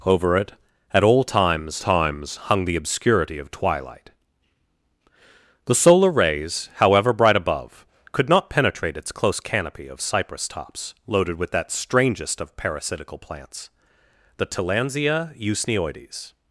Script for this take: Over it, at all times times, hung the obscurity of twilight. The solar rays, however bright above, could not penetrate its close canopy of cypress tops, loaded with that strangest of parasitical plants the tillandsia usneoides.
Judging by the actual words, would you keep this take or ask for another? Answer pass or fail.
pass